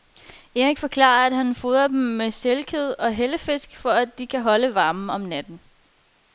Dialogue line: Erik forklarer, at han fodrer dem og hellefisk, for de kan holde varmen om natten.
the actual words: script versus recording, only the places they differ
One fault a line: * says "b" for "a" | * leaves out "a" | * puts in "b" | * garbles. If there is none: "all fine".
* puts in "med sælkød"
* puts in "at"